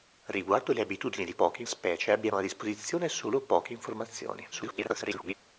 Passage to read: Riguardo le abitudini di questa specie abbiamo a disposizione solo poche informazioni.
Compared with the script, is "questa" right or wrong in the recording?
wrong